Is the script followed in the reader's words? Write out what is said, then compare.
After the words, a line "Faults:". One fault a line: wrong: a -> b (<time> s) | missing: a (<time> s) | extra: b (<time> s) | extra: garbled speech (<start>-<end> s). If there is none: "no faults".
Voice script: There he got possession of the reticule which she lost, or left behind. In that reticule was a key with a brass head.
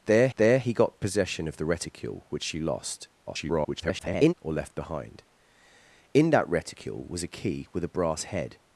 There there he got possession of the reticule which she lost, [garbled] or left behind. In that reticule was a key with a brass head.
Faults:
extra: there (0.4 s)
extra: garbled speech (3.3-4.3 s)